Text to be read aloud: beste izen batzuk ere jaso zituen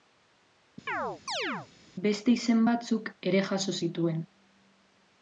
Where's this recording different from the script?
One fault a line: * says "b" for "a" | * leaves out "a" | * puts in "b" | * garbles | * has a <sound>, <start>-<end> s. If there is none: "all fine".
* has a chirp, 0.9-1.7 s